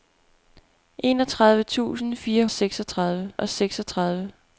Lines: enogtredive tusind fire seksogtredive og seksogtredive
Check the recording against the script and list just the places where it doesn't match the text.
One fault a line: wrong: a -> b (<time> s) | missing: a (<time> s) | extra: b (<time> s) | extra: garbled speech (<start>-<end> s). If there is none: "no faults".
no faults